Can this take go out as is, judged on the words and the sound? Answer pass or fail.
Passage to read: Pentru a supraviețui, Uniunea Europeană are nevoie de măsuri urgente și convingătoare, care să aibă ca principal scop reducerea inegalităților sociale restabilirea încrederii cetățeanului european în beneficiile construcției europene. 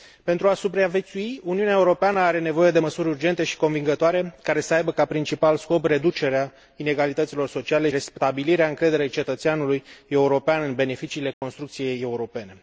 fail